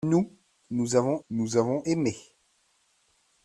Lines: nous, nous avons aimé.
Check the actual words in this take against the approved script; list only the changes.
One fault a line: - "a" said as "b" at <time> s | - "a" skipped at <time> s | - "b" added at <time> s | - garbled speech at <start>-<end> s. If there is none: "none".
- "nous avons" added at 1.3 s